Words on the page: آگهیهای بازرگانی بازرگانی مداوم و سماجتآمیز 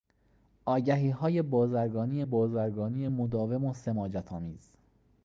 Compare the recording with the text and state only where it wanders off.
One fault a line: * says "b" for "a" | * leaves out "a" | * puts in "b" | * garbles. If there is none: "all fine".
all fine